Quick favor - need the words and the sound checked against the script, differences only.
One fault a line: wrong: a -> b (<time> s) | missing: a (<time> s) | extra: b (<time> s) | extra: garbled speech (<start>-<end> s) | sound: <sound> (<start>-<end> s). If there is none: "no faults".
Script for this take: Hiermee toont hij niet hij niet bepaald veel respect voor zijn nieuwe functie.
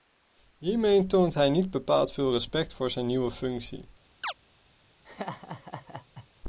missing: hij niet (1.7 s)
sound: chirp (4.2-4.3 s)
sound: laugh (5.0-6.3 s)